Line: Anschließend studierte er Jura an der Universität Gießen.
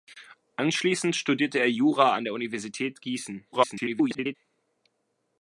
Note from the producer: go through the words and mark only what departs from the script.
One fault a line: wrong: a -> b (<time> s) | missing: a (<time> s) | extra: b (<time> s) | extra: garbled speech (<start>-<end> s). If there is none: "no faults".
extra: garbled speech (3.5-4.4 s)